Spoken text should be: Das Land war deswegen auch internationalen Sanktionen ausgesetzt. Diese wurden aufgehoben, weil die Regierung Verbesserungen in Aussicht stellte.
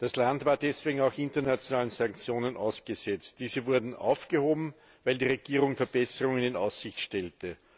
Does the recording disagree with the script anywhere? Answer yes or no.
no